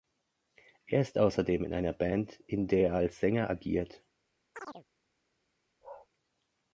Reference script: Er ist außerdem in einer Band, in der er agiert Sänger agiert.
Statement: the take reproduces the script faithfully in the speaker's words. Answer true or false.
false